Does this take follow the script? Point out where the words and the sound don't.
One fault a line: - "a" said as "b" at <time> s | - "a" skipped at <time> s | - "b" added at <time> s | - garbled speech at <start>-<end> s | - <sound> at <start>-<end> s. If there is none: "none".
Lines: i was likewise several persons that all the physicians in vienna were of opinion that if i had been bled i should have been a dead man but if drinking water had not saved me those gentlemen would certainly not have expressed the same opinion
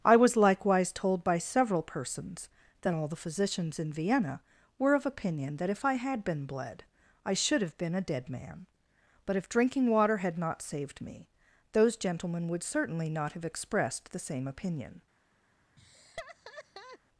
- "told by" added at 0.9 s
- laugh at 15.8-17.0 s